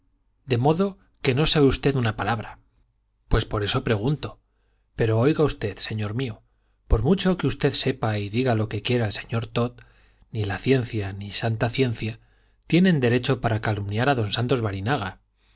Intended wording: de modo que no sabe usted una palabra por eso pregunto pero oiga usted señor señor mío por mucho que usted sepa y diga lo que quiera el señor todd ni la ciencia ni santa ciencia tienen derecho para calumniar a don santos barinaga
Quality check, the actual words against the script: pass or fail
fail